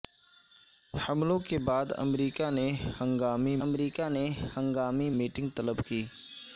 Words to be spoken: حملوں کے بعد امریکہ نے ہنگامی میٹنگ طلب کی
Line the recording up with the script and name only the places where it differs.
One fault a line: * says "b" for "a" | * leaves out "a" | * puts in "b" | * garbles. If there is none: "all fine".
* puts in "امریکہ نے ہنگامی"